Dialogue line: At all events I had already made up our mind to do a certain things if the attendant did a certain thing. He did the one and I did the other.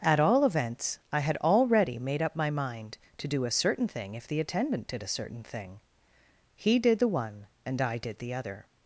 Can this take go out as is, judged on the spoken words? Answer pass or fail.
fail